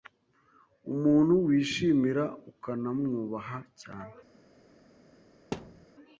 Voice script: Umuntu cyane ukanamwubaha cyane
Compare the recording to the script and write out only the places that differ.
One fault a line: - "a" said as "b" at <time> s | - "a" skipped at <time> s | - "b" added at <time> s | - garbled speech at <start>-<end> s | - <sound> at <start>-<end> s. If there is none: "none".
- "cyane" said as "wishimira" at 1.4 s
- thud at 5.5-5.9 s